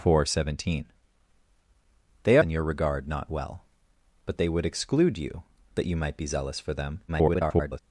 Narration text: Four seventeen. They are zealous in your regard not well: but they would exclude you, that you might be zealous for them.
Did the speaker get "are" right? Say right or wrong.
wrong